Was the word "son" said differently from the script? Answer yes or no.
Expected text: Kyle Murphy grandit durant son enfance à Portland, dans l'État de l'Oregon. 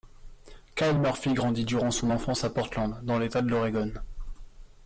no